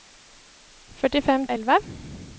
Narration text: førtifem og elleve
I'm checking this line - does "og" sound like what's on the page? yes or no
yes